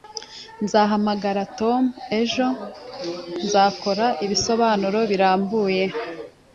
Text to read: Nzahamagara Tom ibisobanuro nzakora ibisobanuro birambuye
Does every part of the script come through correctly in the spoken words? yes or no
no